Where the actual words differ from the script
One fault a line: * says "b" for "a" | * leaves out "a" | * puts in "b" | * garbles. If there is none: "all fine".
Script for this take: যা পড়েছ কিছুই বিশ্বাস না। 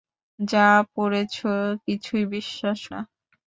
all fine